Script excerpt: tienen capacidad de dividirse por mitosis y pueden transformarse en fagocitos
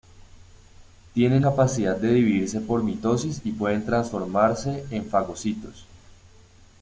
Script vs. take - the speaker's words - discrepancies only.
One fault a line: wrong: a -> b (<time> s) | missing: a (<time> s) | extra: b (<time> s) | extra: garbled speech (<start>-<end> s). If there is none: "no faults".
no faults